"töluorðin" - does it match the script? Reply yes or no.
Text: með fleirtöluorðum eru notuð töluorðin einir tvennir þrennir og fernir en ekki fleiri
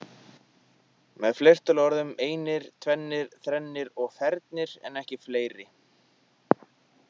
no